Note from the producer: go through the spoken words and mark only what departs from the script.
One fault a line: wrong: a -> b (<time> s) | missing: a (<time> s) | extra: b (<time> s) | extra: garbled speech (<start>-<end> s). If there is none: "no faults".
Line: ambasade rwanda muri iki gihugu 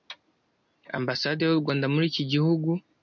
extra: y'u (1.4 s)